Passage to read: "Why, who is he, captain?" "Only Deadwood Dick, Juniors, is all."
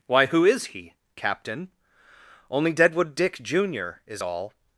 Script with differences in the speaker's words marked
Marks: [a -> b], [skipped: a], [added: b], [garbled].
"Why, who is he, captain?" "Only Deadwood Dick, [Juniors, -> Junior] is all."